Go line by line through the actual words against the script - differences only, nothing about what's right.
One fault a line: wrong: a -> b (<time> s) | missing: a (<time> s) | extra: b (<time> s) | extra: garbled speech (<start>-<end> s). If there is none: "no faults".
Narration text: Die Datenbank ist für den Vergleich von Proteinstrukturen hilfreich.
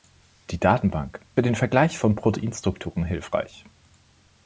missing: ist (1.2 s)